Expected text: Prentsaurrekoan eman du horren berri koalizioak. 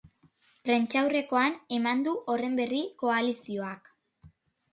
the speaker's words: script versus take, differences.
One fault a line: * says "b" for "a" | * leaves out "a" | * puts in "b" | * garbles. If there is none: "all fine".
all fine